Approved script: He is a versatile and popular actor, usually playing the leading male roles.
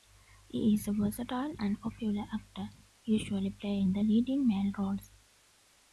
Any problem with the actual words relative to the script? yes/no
no